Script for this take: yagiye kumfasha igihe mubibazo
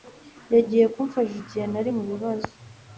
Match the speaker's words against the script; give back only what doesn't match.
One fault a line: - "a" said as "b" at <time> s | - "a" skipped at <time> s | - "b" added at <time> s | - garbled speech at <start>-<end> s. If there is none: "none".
- "nari" added at 1.7 s